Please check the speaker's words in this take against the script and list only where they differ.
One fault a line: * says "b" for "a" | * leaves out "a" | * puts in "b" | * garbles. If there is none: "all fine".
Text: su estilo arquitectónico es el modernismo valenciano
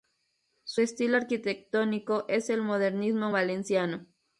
all fine